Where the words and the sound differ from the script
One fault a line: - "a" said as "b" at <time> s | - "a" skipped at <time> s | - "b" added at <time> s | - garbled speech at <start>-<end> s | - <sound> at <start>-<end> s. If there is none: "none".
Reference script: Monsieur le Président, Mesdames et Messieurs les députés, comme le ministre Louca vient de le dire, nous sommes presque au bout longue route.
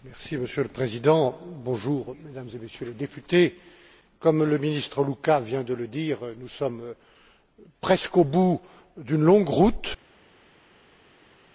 - "d'une" added at 9.0 s